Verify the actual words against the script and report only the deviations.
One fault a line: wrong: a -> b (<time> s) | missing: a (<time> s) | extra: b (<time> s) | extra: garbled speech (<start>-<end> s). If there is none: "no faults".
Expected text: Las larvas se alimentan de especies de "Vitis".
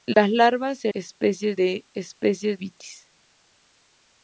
wrong: alimentan -> especies (0.9 s)
missing: de (2.6 s)